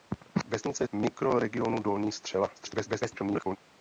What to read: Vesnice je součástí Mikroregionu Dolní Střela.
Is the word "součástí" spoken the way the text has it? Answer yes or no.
no